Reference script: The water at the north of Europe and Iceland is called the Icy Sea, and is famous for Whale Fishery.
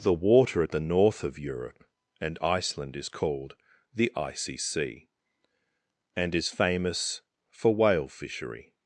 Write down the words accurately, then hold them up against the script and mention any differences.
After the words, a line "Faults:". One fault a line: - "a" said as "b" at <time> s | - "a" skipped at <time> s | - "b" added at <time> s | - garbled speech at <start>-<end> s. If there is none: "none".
The water at the north of Europe and Iceland is called the Icy Sea, and is famous for Whale Fishery.
Faults:
none